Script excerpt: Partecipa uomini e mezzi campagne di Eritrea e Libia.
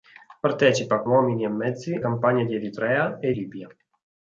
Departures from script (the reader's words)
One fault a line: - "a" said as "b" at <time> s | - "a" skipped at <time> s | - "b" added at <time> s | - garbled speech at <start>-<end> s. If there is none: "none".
none